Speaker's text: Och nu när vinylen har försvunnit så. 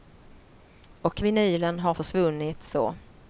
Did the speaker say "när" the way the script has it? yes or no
no